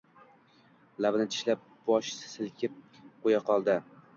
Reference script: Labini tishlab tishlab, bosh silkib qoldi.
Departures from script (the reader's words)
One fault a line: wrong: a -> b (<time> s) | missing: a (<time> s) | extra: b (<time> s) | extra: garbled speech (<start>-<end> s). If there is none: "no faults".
missing: tishlab (1.7 s)
extra: qo‘ya (3.3 s)